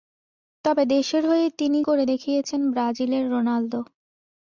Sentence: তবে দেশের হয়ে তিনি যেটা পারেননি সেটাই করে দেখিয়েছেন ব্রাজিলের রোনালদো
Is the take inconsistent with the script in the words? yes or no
yes